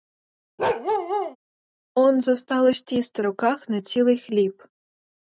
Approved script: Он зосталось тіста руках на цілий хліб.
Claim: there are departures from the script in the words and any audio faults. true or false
true